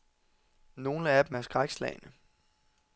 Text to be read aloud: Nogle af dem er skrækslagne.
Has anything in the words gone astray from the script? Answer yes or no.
no